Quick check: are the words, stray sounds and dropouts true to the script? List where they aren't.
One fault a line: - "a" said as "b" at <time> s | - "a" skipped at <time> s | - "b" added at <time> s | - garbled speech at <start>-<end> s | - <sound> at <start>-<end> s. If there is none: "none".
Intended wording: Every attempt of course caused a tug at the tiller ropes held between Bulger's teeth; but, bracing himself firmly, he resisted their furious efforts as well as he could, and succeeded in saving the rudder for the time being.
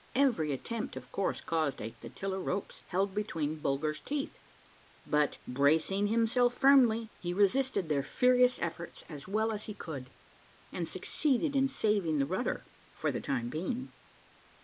- "tug at" skipped at 1.9 s